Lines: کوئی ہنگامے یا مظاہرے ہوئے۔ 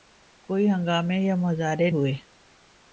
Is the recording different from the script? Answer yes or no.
no